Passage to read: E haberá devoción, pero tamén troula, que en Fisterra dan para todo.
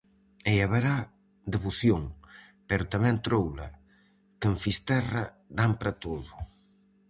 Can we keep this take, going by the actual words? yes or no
yes